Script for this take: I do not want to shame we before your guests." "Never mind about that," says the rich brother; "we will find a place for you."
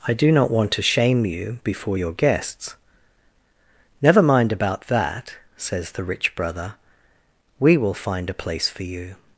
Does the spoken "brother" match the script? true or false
true